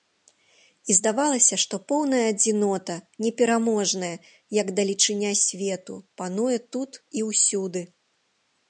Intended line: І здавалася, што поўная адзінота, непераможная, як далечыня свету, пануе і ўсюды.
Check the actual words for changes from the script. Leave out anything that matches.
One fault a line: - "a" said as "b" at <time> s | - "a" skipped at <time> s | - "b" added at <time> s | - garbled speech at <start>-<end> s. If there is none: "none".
- "тут" added at 6.8 s